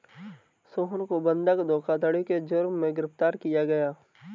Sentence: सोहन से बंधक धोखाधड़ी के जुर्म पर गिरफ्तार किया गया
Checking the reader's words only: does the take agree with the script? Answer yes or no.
no